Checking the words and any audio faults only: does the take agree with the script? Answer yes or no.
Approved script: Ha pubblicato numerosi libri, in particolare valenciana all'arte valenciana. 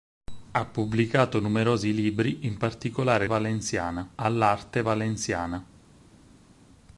yes